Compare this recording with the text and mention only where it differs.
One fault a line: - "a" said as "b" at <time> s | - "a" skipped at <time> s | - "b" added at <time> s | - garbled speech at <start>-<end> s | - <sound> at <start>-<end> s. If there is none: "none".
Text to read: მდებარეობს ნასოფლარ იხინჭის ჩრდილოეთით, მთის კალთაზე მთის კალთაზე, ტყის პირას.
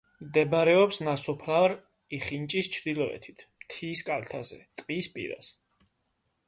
- "მთის კალთაზე" skipped at 4.6 s